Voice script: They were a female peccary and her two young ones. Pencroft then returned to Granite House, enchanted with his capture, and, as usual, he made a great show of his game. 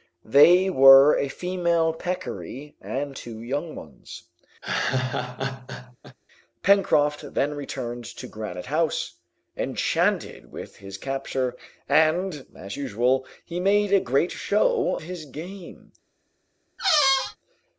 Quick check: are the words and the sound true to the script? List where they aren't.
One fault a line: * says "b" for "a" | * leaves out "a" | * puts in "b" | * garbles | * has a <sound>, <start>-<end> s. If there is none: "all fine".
* leaves out "her"
* has a laugh, 4.6-6.2 s
* leaves out "of"
* has a squeak, 16.8-17.4 s